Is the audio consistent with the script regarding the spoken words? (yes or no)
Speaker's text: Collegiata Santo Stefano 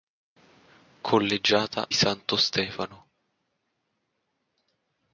yes